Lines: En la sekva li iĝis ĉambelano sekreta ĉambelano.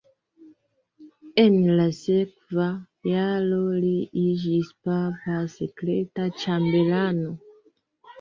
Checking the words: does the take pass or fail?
fail